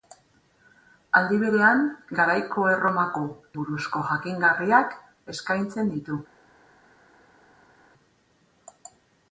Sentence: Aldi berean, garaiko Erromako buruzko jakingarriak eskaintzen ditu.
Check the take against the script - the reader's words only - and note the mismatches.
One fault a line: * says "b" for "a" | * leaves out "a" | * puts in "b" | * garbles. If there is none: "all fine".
all fine